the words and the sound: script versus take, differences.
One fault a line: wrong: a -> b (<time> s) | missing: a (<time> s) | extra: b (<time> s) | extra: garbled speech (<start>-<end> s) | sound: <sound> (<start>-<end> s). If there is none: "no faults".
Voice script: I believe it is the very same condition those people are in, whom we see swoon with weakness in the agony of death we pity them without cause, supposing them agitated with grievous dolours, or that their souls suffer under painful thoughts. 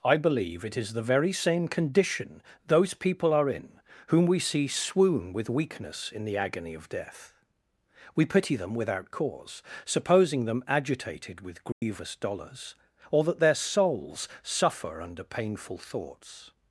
sound: dropout (11.7-11.8 s)